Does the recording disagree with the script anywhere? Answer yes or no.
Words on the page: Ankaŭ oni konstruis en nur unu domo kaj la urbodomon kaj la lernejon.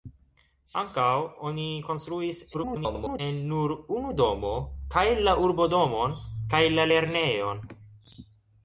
yes